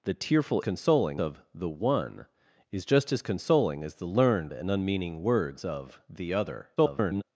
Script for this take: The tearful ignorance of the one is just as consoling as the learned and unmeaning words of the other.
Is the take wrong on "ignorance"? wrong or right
wrong